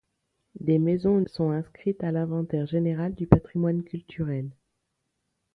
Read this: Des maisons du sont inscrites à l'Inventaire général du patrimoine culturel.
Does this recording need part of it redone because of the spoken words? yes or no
yes